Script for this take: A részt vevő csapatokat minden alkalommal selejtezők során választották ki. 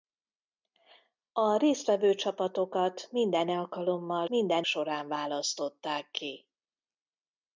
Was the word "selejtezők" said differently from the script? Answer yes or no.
yes